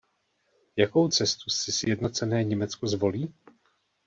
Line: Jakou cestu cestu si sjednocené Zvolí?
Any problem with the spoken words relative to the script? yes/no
yes